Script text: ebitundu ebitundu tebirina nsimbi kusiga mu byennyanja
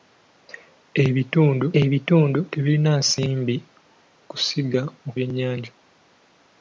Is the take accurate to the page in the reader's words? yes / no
yes